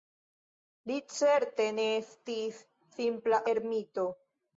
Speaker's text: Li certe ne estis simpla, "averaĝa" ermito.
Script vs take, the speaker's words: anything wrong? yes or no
yes